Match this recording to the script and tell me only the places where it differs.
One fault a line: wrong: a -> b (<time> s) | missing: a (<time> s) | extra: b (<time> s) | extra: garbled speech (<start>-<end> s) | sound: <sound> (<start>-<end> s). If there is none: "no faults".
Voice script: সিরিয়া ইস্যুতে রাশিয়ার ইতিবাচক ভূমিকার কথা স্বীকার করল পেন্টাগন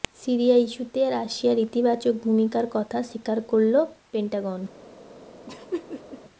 sound: laugh (5.5-6.2 s)